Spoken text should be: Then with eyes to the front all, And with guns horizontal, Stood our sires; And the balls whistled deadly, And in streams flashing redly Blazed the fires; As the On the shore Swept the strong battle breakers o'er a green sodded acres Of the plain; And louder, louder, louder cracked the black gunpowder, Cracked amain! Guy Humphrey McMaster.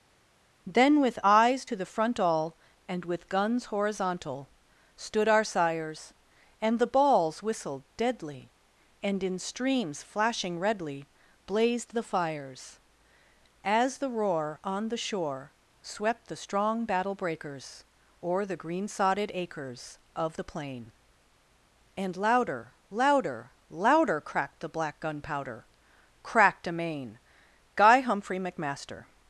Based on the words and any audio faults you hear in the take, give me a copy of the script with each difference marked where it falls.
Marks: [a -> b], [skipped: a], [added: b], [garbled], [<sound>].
Then with eyes to the front all, And with guns horizontal, Stood our sires; And the balls whistled deadly, And in streams flashing redly Blazed the fires; As the [added: roar] On the shore Swept the strong battle breakers o'er [a -> the] green sodded acres Of the plain; And louder, louder, louder cracked the black gunpowder, Cracked amain! Guy Humphrey McMaster.